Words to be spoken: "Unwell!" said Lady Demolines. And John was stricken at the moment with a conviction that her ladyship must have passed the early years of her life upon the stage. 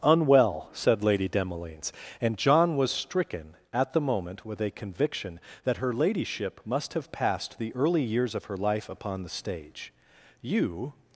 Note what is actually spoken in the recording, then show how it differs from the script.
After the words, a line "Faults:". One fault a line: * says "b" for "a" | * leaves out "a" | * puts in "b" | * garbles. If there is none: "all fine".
"Unwell!" said Lady Demolines. And John was stricken at the moment with a conviction that her ladyship must have passed the early years of her life upon the stage. "You
Faults:
* puts in "You"